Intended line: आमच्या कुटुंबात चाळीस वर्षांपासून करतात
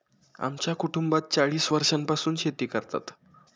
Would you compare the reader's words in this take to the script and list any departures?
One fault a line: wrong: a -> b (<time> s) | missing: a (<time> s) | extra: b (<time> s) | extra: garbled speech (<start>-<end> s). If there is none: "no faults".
extra: शेती (2.4 s)